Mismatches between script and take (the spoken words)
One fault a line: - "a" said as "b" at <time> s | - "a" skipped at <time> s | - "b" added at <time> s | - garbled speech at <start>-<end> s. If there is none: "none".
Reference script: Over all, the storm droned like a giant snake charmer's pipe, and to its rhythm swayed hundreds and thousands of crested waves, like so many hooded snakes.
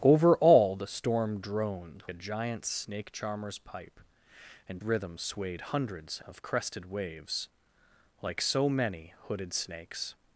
- "like" skipped at 2.0 s
- "to its" skipped at 4.8 s
- "and thousands" skipped at 6.2 s